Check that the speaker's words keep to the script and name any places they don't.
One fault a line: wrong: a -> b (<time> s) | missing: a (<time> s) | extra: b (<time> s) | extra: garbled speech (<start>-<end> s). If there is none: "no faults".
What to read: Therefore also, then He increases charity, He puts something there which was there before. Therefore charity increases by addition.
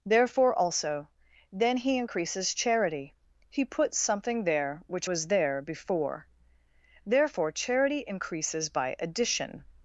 no faults